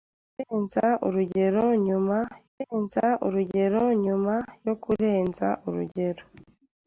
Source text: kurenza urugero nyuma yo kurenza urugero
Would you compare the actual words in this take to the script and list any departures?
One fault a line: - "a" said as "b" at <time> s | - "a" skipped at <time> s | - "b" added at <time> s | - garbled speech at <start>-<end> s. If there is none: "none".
- "kurenza urugero nyuma" added at 2.5 s